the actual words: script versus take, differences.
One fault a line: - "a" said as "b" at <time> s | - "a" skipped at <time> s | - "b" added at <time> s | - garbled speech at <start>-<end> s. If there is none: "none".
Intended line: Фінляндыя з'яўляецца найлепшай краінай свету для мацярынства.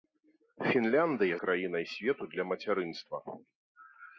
- "з'яўляецца найлепшай" skipped at 1.4 s